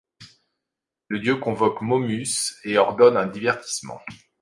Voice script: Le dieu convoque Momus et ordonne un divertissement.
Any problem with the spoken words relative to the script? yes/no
no